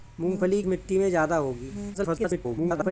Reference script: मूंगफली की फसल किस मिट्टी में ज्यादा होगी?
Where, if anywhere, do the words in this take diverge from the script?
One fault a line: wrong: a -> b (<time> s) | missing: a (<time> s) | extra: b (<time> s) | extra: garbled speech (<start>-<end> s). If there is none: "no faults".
missing: की फसल किस (0.6 s)
extra: garbled speech (1.9-2.9 s)